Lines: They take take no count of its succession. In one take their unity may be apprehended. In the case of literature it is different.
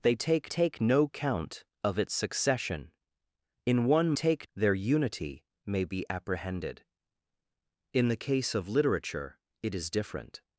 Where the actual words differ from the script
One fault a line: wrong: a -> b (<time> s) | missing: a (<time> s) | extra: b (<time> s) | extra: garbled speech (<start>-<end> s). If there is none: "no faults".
no faults